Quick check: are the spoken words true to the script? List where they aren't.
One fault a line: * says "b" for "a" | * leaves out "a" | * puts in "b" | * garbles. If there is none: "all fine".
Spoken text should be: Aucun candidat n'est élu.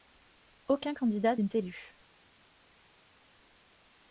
all fine